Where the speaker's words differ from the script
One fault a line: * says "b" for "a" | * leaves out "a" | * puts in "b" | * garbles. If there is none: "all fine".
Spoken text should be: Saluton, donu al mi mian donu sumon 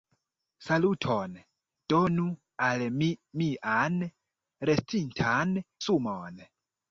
* says "restintan" for "donu"